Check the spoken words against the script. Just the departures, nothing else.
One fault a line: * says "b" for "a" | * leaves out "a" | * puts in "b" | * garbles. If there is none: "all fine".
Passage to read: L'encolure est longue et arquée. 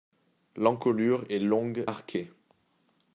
* leaves out "et"